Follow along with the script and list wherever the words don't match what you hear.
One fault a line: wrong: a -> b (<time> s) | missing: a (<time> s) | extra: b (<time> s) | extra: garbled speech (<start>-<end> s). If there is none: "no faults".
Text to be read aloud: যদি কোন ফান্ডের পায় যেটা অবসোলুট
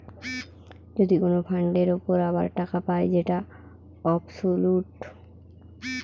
extra: উপর আবার টাকা (2.0 s)